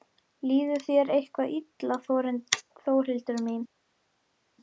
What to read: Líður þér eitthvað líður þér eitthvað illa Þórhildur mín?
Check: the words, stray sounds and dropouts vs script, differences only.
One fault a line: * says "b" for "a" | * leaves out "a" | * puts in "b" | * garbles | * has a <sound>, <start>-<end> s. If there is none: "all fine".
* leaves out "líður þér eitthvað"